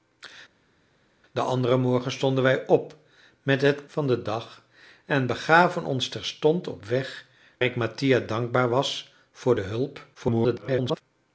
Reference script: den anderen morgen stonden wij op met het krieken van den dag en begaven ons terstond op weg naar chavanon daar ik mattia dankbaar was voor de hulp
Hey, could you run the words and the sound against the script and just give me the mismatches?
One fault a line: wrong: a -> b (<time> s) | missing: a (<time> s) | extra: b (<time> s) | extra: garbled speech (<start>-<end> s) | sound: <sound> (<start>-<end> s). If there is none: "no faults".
missing: krieken (3.9 s)
missing: naar chavanon daar (7.3 s)
extra: garbled speech (10.1-11.0 s)